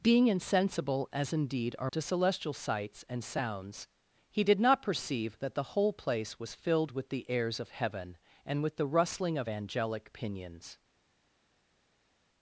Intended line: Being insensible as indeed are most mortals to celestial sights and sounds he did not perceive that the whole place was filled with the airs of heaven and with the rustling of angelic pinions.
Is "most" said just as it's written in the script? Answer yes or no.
no